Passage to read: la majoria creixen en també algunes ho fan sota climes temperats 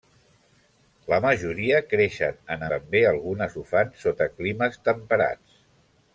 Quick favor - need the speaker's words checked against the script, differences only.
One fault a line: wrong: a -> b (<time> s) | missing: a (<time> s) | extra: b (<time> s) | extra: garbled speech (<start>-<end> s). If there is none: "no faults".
no faults